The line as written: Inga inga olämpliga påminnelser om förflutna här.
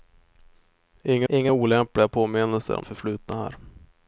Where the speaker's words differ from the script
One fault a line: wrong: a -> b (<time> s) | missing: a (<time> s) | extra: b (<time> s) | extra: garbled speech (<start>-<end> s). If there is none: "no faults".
no faults